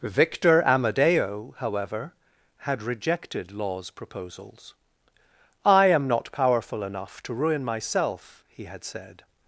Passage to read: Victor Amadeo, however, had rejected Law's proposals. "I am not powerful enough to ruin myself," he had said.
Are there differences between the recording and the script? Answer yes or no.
no